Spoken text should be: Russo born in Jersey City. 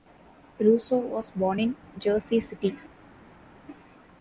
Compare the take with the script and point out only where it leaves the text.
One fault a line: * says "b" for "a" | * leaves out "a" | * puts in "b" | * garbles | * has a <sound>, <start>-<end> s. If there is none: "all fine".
* puts in "was"